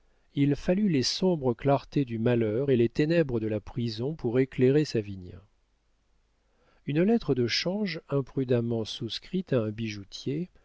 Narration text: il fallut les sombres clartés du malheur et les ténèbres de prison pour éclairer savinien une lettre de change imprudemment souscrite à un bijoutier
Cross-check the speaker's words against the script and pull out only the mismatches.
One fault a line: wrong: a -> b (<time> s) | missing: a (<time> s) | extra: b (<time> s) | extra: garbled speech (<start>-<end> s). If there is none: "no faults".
extra: la (3.5 s)